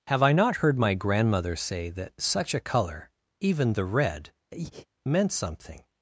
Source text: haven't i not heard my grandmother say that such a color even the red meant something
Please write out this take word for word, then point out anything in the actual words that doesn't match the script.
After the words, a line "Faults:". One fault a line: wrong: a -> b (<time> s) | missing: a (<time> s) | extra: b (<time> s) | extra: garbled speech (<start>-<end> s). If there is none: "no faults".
have i not heard my grandmother say that such a color even the red meant something
Faults:
wrong: haven't -> have (0.1 s)